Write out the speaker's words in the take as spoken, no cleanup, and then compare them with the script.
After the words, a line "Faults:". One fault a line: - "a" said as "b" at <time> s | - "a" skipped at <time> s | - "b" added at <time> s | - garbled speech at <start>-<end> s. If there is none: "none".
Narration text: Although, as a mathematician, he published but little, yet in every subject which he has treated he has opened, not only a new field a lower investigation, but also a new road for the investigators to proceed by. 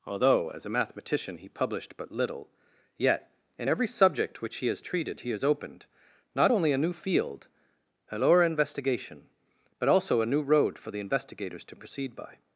Although, as a mathematician, he published but little, yet in every subject which he has treated he has opened, not only a new field a lower investigation, but also a new road for the investigators to proceed by.
Faults:
none